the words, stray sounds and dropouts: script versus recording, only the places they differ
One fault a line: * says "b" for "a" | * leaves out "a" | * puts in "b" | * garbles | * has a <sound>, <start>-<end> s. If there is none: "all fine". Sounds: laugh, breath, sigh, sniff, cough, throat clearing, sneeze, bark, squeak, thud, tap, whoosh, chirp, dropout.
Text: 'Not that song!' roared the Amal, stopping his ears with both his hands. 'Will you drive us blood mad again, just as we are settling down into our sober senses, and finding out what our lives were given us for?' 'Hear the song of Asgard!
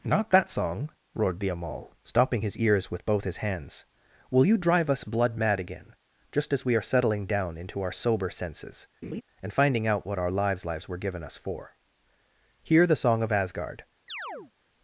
* has a laugh, 9.0-9.2 s
* puts in "lives"
* has a chirp, 14.1-14.5 s